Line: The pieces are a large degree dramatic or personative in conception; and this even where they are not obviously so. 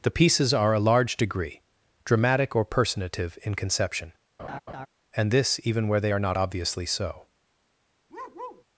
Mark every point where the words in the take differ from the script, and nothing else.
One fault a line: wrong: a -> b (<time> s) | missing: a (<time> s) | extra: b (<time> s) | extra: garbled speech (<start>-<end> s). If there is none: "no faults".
no faults